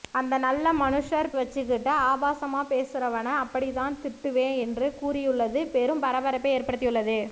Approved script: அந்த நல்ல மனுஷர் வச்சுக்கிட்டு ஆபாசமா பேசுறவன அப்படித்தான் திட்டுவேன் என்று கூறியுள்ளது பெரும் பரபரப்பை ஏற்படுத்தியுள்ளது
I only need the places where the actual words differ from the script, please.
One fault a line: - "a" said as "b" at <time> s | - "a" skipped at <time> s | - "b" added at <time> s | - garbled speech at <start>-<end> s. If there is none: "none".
none